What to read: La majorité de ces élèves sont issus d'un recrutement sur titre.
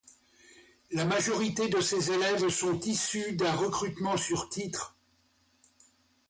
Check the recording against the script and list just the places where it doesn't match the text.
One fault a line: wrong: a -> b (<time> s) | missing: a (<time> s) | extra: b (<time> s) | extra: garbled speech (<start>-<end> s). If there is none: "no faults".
no faults